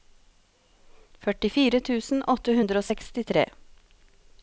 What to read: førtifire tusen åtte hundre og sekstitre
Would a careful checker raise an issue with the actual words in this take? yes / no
no